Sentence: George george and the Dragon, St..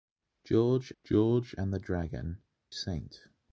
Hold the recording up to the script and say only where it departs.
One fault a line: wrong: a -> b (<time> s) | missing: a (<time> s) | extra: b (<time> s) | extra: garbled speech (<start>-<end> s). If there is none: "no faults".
no faults